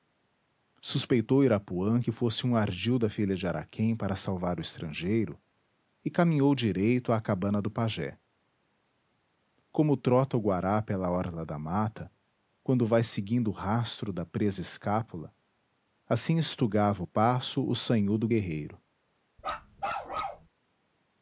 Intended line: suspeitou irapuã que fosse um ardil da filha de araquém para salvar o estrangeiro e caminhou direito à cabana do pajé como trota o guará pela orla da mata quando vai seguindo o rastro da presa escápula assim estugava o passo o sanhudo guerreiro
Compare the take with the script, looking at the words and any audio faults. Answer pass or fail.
fail